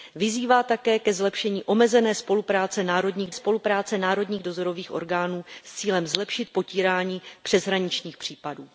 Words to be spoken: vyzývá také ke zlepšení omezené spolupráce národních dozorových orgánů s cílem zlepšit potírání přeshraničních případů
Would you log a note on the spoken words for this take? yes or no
yes